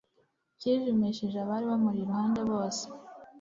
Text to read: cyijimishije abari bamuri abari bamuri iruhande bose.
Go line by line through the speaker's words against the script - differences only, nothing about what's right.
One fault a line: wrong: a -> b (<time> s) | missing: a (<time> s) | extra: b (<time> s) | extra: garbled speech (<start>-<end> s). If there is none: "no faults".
missing: abari bamuri (2.0 s)